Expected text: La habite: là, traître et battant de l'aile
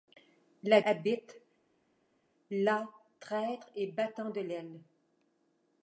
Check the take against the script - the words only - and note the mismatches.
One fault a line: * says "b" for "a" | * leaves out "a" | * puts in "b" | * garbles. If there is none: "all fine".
all fine